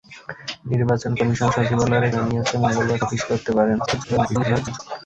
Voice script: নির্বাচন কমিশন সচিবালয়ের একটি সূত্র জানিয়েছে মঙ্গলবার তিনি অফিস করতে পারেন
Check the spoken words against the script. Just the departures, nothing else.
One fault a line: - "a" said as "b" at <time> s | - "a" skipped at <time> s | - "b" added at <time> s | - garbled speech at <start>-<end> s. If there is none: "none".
- "একটি সূত্র" skipped at 2.1 s
- "তিনি" skipped at 3.0 s
- garbled speech at 3.9-4.8 s